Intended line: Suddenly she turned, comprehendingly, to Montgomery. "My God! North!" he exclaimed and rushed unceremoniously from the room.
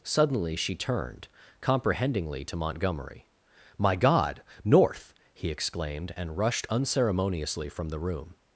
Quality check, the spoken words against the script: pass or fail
pass